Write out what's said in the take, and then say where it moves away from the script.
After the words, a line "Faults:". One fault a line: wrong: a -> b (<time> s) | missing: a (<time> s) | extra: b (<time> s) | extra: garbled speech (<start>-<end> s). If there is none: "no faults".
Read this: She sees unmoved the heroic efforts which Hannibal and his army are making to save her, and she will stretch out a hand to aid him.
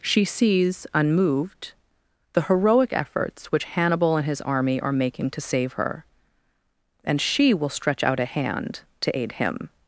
She sees unmoved the heroic efforts which Hannibal and his army are making to save her, and she will stretch out a hand to aid him.
Faults:
no faults